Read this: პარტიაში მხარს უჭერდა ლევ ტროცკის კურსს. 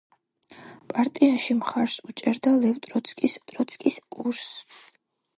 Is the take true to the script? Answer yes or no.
no